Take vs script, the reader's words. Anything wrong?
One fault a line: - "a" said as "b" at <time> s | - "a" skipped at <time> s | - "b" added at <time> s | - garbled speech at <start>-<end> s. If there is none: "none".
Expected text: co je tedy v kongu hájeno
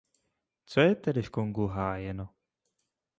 none